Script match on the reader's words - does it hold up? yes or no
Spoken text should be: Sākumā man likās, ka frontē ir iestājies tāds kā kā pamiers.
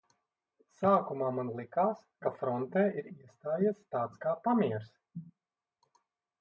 no